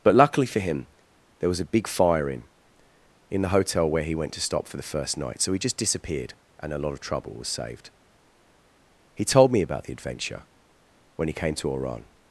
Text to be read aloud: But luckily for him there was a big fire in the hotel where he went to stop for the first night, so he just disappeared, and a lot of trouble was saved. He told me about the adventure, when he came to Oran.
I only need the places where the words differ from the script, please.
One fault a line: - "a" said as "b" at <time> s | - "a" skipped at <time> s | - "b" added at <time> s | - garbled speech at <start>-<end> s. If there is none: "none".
- "in" added at 3.3 s